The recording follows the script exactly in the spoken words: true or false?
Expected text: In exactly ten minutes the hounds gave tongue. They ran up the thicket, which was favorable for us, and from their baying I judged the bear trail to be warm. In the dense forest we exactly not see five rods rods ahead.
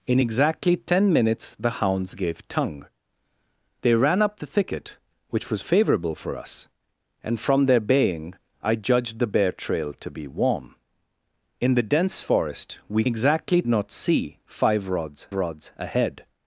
true